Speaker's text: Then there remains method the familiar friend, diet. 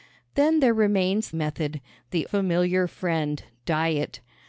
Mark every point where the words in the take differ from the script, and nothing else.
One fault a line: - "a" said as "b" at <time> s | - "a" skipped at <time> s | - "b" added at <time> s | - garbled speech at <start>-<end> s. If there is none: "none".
none